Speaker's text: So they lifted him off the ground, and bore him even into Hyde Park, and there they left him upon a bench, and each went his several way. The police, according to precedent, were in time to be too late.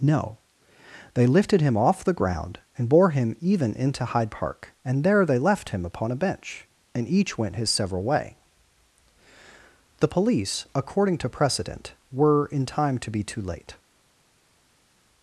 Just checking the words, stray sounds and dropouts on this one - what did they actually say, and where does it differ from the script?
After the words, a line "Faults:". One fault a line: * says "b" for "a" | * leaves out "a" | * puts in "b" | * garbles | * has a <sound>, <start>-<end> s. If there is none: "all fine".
No they lifted him off the ground, and bore him even into Hyde Park, and there they left him upon a bench, and each went his several way. The police, according to precedent, were in time to be too late.
Faults:
* says "No" for "So"